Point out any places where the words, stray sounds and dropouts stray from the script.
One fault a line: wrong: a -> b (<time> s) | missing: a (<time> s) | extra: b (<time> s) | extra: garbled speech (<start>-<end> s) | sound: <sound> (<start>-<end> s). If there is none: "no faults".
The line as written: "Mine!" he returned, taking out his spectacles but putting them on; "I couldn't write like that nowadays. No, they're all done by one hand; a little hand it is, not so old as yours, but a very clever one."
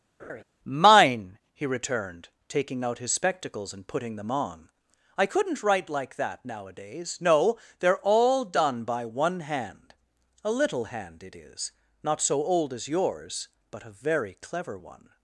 sound: laugh (0.2-0.4 s)
wrong: but -> and (3.7 s)